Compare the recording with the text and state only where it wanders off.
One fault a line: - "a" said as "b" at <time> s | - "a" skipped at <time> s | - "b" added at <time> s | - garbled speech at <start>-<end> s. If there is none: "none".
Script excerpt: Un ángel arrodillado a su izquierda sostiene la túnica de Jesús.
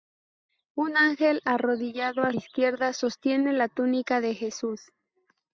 - "su" skipped at 2.3 s